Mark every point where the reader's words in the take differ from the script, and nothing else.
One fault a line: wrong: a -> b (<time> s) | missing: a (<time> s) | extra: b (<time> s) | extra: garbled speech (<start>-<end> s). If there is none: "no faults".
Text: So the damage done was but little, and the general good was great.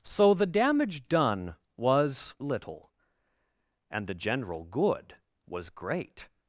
missing: but (2.3 s)